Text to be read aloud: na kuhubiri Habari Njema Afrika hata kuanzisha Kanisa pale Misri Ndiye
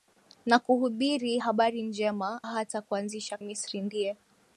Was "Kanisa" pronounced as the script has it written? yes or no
no